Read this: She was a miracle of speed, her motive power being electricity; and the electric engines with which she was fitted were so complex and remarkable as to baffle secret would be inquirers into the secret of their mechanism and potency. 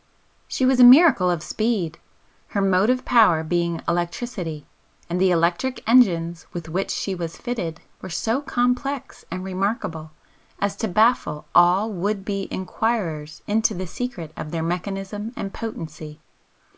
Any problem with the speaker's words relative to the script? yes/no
yes